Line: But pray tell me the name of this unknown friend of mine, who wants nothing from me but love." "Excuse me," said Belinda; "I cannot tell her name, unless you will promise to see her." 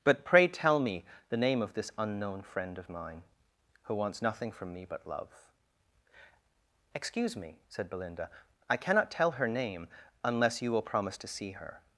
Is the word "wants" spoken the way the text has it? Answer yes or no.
yes